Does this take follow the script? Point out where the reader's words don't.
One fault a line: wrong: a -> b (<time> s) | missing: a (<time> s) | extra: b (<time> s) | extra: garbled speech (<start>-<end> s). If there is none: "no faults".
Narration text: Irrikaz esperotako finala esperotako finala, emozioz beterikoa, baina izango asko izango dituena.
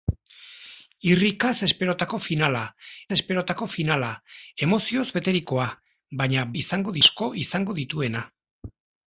no faults